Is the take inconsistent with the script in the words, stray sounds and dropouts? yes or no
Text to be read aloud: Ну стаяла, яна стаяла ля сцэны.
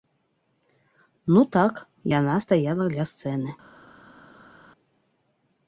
yes